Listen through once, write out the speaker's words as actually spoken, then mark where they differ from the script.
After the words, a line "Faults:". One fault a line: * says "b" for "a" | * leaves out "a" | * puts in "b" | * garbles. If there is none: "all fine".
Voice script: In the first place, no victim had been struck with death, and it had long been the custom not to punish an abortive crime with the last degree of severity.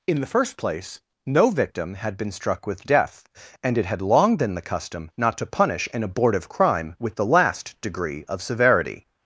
In the first place, no victim had been struck with death, and it had long been the custom not to punish an abortive crime with the last degree of severity.
Faults:
all fine